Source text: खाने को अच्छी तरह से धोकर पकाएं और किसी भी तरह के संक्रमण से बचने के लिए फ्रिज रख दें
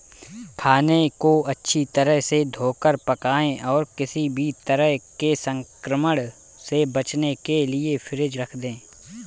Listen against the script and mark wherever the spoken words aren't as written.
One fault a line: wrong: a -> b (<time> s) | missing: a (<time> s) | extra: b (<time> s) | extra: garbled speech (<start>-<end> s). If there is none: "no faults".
no faults